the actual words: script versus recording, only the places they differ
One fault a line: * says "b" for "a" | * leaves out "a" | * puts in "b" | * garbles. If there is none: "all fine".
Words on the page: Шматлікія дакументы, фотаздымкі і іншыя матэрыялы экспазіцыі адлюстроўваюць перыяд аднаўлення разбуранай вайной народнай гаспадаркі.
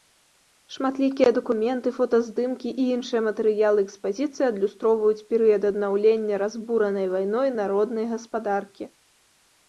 all fine